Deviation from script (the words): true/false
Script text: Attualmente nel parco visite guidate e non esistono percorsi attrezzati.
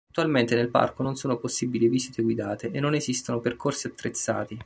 true